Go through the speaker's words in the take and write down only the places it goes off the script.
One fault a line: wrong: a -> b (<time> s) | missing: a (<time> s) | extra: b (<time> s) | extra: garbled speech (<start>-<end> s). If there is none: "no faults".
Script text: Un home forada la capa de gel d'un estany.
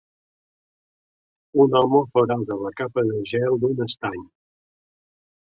no faults